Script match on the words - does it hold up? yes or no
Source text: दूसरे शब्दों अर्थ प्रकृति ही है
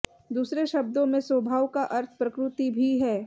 no